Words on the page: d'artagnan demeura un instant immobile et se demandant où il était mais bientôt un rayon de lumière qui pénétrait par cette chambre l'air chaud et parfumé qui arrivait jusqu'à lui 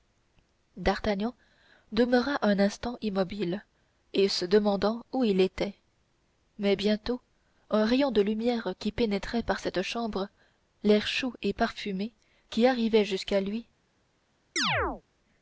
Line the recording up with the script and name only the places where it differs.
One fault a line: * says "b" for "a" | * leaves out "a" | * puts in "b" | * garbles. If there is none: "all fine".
all fine